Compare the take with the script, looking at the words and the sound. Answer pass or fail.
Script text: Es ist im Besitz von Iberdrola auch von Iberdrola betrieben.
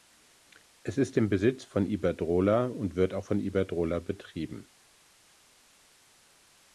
fail